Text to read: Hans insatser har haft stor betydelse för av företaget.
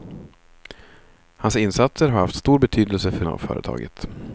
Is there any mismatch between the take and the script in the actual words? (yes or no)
no